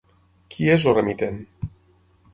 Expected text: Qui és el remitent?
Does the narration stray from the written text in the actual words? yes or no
no